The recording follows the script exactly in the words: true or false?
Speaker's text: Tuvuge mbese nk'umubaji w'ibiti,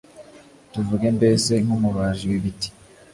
true